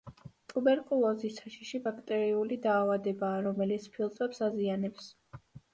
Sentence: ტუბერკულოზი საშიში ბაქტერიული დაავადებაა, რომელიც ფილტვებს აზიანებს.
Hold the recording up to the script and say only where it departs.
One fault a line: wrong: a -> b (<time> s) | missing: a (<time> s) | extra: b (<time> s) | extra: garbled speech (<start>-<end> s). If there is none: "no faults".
no faults